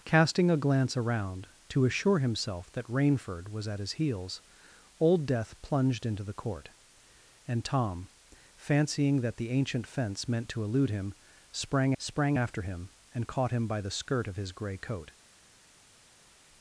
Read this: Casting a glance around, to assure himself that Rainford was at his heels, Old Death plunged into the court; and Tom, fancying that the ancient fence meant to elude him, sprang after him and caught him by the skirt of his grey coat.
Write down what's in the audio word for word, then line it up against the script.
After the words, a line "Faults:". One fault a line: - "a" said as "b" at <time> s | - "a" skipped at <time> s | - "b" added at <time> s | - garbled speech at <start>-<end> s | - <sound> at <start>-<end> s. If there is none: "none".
Casting a glance around, to assure himself that Rainford was at his heels, Old Death plunged into the court; and Tom, fancying that the ancient fence meant to elude him, sprang sprang after him and caught him by the skirt of his grey coat.
Faults:
- "sprang" added at 12.0 s